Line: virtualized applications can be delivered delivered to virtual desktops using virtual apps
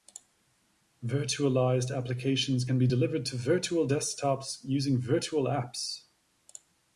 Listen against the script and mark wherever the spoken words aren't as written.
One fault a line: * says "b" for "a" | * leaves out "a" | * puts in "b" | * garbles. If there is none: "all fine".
* leaves out "delivered"